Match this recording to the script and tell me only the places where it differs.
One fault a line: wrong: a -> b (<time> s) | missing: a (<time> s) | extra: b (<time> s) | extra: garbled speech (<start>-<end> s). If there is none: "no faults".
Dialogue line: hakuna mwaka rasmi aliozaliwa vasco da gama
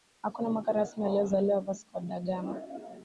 no faults